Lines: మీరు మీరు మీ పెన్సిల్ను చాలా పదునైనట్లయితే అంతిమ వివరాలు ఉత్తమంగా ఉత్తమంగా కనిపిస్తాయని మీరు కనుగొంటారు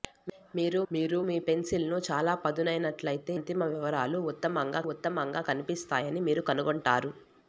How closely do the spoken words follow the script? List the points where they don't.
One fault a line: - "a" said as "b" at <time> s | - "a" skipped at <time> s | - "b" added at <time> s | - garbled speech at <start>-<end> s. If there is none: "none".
none